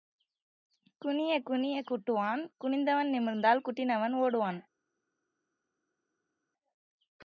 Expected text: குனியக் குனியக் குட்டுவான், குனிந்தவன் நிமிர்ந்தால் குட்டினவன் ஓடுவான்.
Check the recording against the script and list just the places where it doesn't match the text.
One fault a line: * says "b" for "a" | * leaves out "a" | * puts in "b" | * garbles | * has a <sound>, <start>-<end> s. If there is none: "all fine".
all fine